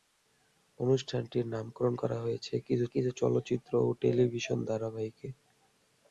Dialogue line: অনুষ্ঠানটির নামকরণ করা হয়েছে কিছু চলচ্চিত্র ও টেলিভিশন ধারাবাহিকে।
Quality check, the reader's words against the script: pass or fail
fail